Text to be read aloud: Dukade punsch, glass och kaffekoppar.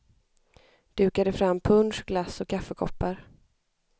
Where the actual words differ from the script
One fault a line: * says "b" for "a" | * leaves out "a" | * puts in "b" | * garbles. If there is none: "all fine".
* puts in "fram"